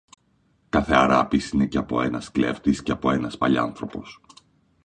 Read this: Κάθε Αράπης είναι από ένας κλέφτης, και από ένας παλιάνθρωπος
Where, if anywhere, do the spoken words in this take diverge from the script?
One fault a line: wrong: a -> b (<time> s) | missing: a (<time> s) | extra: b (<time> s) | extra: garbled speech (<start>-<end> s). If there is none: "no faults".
extra: και (1.6 s)